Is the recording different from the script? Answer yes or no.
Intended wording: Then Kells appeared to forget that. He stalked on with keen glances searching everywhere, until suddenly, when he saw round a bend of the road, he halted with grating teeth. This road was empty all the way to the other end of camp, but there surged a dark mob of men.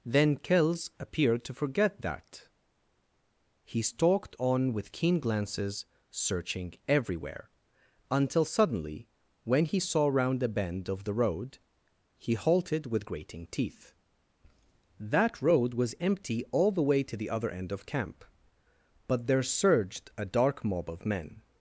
yes